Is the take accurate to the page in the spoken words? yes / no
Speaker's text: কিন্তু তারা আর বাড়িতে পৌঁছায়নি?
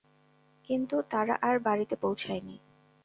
yes